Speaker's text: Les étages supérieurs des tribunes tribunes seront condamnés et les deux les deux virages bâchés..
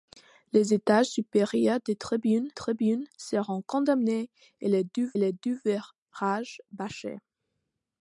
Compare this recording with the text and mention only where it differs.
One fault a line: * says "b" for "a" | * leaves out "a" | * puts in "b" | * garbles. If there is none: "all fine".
all fine